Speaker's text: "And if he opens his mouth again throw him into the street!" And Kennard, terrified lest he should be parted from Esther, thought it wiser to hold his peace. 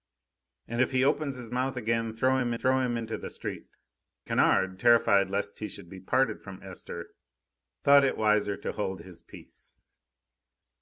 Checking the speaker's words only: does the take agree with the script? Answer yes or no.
no